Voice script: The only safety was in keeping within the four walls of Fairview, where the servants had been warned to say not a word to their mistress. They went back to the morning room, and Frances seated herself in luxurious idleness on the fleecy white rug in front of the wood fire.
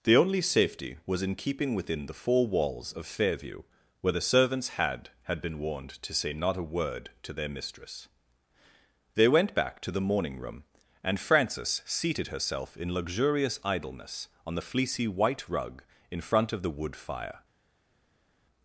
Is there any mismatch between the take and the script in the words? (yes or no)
yes